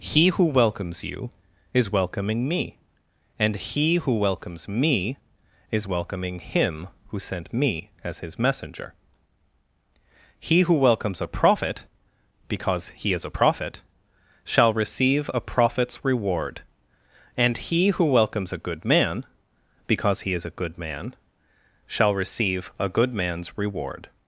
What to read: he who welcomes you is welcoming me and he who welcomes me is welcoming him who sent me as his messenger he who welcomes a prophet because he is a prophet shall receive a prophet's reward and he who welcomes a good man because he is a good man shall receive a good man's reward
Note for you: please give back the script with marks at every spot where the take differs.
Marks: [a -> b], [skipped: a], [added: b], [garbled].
he who welcomes you is welcoming me and he who welcomes me is welcoming him who sent me as his messenger he who welcomes a prophet because he is a prophet shall receive a prophet's reward and he who welcomes a good man because he is a good man shall receive a good man's reward